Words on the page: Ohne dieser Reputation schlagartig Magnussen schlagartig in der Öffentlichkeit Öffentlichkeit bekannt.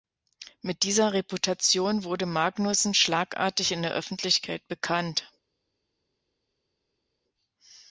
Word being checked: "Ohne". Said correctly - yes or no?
no